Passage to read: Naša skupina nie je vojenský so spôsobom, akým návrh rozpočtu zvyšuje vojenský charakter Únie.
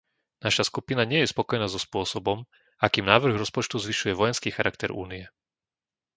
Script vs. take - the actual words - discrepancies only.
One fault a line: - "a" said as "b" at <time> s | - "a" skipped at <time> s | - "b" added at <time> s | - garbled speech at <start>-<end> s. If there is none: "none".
- "vojenský" said as "spokojná" at 1.3 s